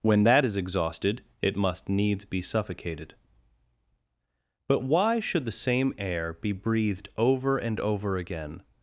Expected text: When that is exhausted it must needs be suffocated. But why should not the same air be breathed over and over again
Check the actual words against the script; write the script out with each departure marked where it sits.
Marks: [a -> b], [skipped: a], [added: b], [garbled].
When that is exhausted it must needs be suffocated. But why should [skipped: not] the same air be breathed over and over again